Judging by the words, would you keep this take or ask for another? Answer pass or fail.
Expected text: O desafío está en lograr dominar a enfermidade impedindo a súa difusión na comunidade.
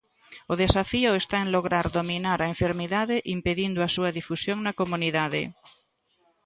pass